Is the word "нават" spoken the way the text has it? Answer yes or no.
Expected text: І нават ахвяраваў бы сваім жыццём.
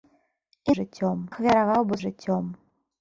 no